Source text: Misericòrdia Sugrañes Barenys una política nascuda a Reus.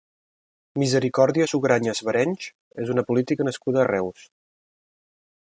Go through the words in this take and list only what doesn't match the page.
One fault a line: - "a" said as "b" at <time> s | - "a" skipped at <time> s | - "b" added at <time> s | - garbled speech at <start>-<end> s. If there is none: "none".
- "és" added at 2.8 s